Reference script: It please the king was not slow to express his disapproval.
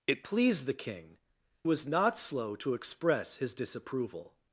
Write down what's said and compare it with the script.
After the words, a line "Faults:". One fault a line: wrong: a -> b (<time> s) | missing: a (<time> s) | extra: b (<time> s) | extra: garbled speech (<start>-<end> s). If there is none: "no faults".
It please the king was not slow to express his disapproval.
Faults:
no faults